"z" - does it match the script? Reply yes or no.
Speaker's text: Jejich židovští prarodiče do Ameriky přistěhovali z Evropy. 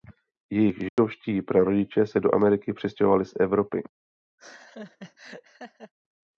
yes